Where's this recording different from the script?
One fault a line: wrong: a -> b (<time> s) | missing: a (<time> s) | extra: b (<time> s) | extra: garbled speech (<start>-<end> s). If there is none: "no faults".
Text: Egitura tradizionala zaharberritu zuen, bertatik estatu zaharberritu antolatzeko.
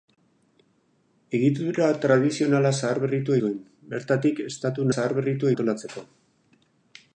no faults